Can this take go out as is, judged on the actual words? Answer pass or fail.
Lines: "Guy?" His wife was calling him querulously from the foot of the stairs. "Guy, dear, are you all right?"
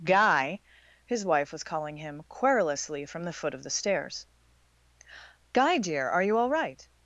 pass